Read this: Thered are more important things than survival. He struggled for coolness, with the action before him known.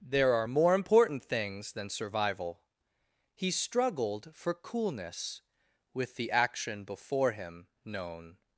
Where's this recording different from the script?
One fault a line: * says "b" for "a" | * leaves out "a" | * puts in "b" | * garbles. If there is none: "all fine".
* says "There" for "Thered"